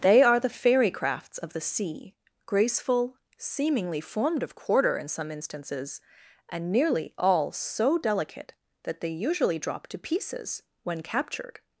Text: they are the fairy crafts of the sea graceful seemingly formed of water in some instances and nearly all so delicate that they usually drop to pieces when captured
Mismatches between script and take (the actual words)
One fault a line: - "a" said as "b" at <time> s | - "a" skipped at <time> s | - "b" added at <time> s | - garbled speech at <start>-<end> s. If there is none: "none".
- "water" said as "quarter" at 4.5 s